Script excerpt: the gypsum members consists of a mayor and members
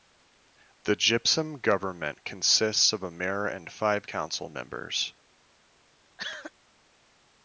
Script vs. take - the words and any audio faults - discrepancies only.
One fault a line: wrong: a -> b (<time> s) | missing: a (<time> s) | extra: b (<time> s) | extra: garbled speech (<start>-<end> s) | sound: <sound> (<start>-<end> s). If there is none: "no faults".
wrong: members -> government (1.6 s)
extra: five council (3.7 s)
sound: cough (6.2-6.5 s)